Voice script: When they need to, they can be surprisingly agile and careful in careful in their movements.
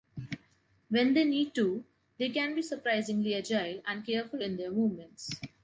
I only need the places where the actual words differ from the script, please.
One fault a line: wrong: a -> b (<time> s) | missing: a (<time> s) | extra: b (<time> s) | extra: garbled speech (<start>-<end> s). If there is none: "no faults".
missing: careful in (4.6 s)